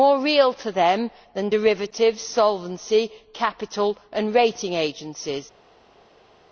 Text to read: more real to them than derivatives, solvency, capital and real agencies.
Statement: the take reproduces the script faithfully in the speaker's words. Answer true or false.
false